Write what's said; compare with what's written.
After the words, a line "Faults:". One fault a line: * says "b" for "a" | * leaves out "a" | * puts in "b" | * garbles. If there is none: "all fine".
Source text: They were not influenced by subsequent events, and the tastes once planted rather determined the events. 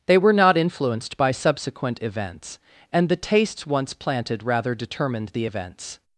They were not influenced by subsequent events, and the tastes once planted rather determined the events.
Faults:
all fine